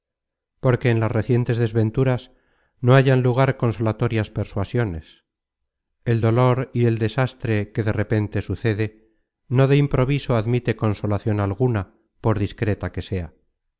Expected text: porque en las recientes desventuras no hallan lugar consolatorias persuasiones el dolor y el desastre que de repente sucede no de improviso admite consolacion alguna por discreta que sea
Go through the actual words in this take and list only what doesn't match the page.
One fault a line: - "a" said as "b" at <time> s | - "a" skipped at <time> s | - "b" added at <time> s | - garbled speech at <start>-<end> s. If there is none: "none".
none